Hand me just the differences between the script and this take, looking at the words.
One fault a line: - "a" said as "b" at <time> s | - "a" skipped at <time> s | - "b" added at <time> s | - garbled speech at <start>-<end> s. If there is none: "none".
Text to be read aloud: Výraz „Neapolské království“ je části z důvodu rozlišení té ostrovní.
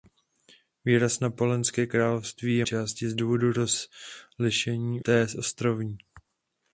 none